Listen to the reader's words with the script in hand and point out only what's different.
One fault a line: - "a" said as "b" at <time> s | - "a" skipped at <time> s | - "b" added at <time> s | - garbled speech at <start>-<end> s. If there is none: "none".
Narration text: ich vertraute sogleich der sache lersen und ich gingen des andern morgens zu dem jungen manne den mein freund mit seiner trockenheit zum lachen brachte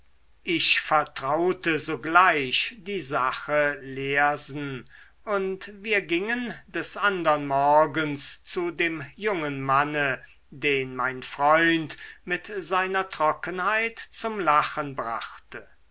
- "der" said as "die" at 2.8 s
- "ich" said as "wir" at 5.8 s